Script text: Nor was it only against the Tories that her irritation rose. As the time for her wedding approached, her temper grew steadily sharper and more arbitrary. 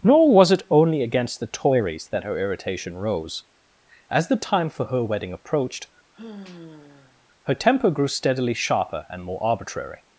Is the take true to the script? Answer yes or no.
yes